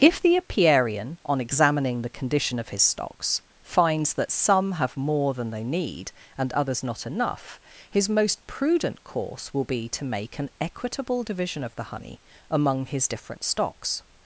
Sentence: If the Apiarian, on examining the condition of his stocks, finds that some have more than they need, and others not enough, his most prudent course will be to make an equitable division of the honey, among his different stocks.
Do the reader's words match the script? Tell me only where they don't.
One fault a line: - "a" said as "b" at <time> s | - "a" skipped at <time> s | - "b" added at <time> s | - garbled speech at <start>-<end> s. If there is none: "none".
none